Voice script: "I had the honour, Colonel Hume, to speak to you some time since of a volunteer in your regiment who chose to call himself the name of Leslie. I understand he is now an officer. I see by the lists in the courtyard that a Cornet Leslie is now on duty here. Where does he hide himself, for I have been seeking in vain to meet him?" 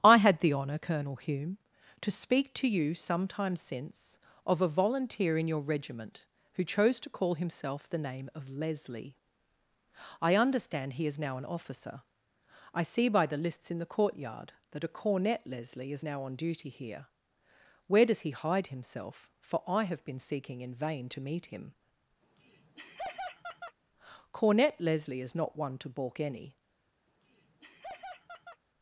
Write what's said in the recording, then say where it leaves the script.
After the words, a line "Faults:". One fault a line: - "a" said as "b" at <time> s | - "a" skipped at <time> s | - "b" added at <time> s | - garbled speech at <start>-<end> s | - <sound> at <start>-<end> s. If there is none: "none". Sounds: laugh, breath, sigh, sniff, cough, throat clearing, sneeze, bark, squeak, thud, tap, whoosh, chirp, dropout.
"I had the honour, Colonel Hume, to speak to you some time since of a volunteer in your regiment who chose to call himself the name of Leslie. I understand he is now an officer. I see by the lists in the courtyard that a Cornet Leslie is now on duty here. Where does he hide himself, for I have been seeking in vain to meet him?" "Cornet Leslie is not one to balk any
Faults:
- laugh at 22.2-23.8 s
- "Cornet Leslie is not one to balk any" added at 24.3 s
- laugh at 27.1-28.6 s